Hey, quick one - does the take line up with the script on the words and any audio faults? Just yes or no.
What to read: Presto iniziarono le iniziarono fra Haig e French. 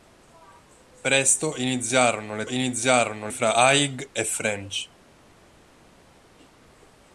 yes